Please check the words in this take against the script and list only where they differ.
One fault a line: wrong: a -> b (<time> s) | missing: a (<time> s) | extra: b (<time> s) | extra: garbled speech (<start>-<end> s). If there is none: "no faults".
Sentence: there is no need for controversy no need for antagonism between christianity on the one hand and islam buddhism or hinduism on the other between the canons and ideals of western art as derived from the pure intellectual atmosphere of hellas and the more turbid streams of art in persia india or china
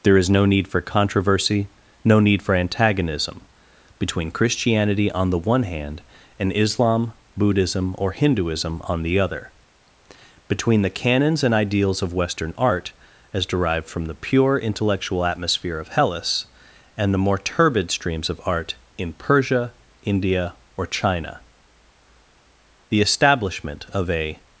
extra: the establishment of a (22.9 s)